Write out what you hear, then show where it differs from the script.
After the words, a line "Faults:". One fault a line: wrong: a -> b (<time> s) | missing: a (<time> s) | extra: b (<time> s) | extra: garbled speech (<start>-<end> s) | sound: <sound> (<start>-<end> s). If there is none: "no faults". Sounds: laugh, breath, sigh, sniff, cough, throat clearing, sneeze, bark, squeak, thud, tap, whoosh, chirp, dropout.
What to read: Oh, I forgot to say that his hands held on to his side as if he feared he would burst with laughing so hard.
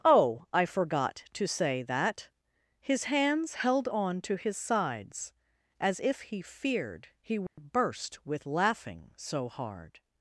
Oh, I forgot to say that his hands held on to his sides as if he feared he would burst with laughing so hard.
Faults:
wrong: side -> sides (4.6 s)
sound: dropout (7.5-7.6 s)